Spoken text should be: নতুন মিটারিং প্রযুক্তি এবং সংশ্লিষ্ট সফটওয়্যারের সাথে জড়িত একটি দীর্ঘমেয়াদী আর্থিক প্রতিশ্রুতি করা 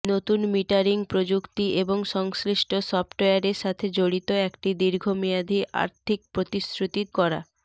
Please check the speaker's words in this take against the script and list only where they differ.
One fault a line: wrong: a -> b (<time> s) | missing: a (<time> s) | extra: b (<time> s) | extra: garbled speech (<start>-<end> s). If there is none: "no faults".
no faults